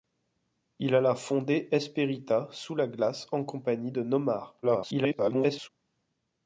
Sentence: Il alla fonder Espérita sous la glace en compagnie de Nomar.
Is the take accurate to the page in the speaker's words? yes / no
no